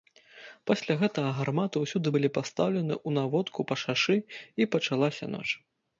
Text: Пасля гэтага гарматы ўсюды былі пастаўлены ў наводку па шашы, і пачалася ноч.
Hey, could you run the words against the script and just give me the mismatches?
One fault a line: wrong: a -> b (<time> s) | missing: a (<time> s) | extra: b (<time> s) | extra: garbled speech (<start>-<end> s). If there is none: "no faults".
no faults